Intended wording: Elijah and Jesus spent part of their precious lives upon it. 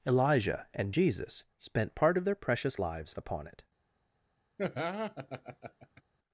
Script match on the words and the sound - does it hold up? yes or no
no